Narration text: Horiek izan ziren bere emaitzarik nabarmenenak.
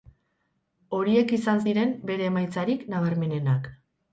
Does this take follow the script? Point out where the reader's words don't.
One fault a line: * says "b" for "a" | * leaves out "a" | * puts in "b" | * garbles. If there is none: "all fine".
all fine